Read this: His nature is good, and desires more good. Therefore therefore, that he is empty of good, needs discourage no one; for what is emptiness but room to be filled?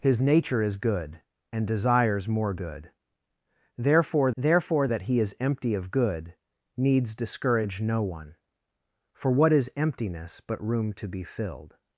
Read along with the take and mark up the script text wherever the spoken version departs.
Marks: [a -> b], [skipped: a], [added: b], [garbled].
His nature is good, and desires more good. Therefore therefore, that he is empty of good, needs discourage no one; for what is emptiness but room to be filled?